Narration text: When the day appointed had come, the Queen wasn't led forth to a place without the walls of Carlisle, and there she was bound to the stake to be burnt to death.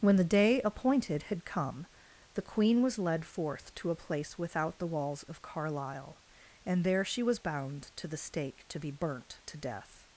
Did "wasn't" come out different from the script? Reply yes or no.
yes